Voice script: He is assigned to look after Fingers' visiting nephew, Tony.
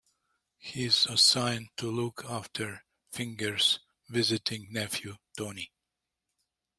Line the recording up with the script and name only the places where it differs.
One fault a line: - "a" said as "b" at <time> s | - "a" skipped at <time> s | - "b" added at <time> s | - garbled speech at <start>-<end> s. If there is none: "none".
none